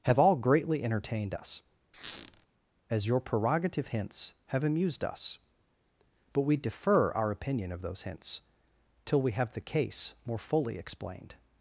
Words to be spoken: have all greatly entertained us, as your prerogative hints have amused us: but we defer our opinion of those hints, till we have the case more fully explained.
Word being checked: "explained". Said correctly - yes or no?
yes